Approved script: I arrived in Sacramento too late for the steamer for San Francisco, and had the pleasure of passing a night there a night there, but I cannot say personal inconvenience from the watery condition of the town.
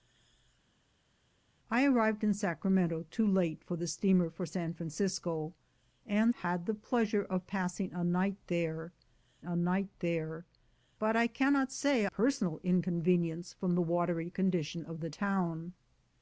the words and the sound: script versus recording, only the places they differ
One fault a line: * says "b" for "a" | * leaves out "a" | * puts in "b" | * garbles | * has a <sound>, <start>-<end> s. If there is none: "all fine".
all fine